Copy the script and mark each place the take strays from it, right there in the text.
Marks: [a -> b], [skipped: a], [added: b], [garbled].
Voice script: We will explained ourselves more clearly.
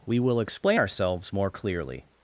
We will [explained -> explain] ourselves more clearly.